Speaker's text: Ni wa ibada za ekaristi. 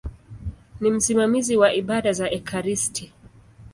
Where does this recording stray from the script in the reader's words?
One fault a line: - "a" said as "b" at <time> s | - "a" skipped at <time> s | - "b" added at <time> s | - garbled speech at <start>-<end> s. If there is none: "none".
- "msimamizi" added at 0.9 s